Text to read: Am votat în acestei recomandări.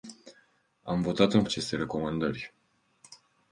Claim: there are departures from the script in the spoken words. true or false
false